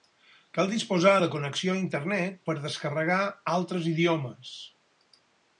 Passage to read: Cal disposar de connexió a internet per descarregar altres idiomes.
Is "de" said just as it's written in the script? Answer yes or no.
yes